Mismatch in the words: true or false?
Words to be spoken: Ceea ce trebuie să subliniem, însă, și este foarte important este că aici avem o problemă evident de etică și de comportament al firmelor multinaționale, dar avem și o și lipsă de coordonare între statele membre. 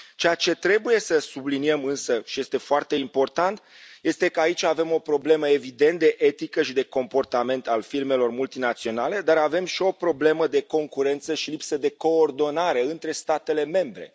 true